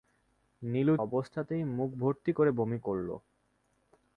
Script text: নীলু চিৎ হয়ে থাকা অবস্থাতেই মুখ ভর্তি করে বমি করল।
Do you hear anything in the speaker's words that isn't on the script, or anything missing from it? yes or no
yes